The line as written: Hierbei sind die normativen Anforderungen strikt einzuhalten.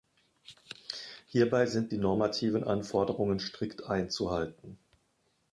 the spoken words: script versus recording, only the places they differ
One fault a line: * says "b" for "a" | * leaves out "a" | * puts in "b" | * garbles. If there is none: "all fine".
all fine